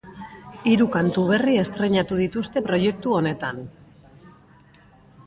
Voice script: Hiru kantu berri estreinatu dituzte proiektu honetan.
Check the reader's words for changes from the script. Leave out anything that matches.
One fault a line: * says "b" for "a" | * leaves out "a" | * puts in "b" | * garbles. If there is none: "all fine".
all fine